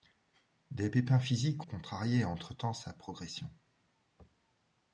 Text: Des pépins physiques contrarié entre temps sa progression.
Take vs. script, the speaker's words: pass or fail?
pass